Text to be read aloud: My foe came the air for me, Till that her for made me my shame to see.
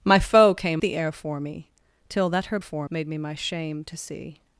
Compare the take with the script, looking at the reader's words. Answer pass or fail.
pass